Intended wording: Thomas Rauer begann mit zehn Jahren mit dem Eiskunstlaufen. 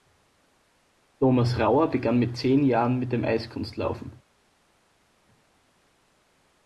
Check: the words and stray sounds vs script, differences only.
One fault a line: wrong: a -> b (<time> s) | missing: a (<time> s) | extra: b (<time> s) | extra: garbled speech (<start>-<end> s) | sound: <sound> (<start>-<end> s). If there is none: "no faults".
no faults